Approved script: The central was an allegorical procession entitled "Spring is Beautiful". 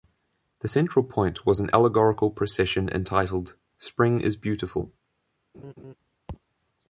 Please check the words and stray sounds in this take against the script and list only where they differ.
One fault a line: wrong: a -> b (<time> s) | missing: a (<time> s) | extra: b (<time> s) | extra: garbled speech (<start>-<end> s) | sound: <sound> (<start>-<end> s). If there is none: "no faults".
extra: point (1.0 s)
sound: laugh (5.5-6.0 s)